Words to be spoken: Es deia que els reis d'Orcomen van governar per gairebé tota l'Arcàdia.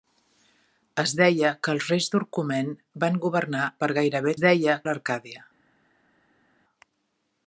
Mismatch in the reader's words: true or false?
true